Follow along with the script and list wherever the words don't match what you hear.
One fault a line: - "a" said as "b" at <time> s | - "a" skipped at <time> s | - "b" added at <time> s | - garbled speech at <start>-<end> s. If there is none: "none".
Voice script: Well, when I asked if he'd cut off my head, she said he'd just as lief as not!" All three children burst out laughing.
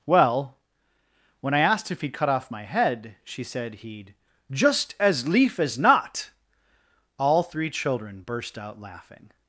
none